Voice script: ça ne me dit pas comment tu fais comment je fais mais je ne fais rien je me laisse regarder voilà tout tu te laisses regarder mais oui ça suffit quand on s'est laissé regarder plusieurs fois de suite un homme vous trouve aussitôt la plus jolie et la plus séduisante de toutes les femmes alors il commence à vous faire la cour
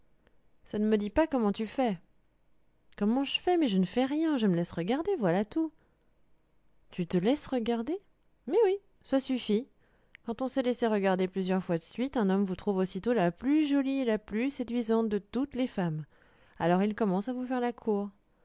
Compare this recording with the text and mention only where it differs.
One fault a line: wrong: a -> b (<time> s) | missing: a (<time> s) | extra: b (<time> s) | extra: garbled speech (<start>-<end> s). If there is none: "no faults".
no faults